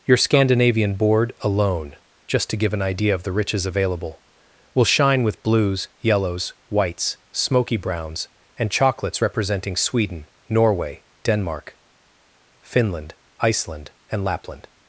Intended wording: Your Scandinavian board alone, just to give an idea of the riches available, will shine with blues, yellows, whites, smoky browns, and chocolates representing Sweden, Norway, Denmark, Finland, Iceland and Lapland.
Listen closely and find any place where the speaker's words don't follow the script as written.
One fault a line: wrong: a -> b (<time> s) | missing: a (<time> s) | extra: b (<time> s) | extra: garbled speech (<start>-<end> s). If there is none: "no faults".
no faults